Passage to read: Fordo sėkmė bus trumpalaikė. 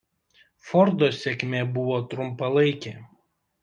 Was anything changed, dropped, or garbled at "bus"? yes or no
yes